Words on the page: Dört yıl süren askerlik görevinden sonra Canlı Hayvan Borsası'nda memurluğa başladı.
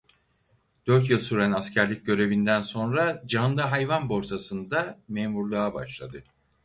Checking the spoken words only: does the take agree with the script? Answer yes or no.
yes